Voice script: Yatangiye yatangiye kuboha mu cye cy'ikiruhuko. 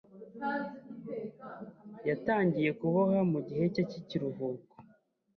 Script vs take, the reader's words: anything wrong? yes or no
yes